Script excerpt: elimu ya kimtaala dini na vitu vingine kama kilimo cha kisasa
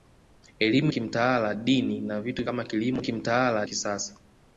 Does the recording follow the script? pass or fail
fail